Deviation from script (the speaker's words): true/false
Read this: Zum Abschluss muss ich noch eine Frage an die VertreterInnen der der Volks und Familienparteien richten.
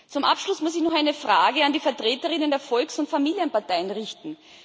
true